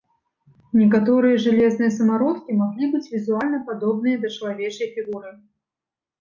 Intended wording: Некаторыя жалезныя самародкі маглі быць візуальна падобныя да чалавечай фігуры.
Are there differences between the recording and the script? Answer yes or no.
no